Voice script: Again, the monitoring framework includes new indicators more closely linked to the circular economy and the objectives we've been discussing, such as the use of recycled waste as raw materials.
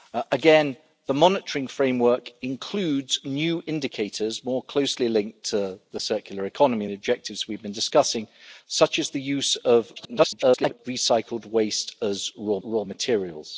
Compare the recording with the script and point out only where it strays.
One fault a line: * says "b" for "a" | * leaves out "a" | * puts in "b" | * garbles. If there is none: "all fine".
* leaves out "and"
* garbles
* puts in "raw"